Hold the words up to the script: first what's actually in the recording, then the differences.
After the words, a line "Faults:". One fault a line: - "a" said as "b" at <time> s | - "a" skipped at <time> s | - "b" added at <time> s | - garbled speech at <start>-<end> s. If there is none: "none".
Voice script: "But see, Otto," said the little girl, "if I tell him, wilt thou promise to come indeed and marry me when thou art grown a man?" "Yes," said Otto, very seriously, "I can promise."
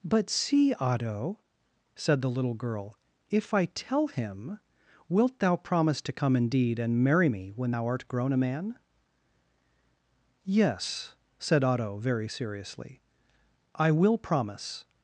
"But see, Otto," said the little girl, "if I tell him, wilt thou promise to come indeed and marry me when thou art grown a man?" "Yes," said Otto, very seriously, "I will promise."
Faults:
- "can" said as "will" at 13.9 s